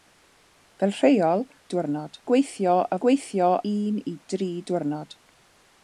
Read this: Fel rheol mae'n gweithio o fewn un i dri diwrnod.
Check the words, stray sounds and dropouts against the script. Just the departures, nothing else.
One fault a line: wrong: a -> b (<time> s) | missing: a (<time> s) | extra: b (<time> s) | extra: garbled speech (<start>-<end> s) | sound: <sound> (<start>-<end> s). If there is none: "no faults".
wrong: mae'n -> diwrnod (1.7 s)
wrong: fewn -> gweithio (3.0 s)